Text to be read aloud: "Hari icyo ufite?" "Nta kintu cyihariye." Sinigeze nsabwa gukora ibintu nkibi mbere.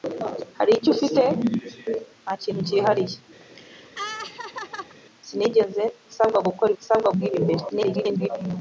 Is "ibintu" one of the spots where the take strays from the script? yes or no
yes